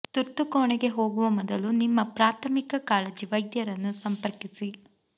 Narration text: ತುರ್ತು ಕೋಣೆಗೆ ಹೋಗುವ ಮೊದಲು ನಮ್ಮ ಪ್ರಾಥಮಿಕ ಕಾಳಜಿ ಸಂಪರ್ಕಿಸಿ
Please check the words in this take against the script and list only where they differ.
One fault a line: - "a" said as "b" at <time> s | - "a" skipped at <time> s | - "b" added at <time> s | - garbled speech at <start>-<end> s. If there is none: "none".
- "ನಮ್ಮ" said as "ನಿಮ್ಮ" at 1.8 s
- "ವೈದ್ಯರನ್ನು" added at 3.3 s